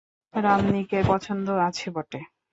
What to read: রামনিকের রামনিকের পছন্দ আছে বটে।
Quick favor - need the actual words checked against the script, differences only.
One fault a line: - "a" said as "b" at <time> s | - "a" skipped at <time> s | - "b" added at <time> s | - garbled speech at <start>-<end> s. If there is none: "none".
- "রামনিকের" skipped at 1.0 s